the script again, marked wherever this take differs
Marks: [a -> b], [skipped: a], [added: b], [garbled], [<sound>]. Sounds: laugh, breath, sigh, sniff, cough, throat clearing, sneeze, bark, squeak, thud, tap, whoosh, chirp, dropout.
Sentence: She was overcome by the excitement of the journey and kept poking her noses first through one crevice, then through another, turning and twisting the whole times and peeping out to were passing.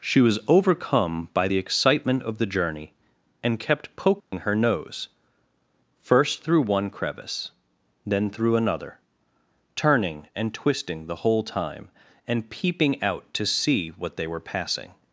She was overcome by the excitement of the journey and kept poking [dropout] her [noses -> nose] first through one crevice, then through another, turning and twisting the whole [times -> time] and peeping out to [added: see what they] were passing.